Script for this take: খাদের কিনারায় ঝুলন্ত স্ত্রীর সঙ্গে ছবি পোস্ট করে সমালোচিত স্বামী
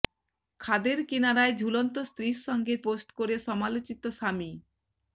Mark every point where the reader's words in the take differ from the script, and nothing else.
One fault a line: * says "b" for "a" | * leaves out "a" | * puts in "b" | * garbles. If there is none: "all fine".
* leaves out "ছবি"